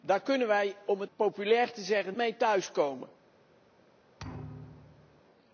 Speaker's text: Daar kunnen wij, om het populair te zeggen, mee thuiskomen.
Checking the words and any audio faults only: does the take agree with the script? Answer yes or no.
no